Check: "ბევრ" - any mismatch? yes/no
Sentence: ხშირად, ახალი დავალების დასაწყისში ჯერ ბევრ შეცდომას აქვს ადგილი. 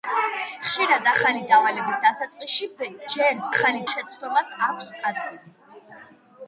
yes